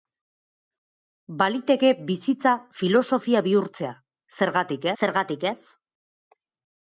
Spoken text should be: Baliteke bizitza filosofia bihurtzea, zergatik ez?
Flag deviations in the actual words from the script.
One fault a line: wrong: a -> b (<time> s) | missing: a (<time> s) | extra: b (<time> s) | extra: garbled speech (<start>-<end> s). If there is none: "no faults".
extra: zergatik (5.0 s)